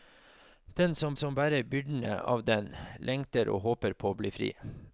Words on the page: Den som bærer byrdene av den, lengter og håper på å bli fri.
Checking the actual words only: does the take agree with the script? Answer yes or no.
no